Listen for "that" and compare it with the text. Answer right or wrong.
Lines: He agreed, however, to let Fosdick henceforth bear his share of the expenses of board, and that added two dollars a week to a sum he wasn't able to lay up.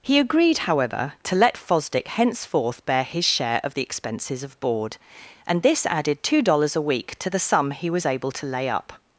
wrong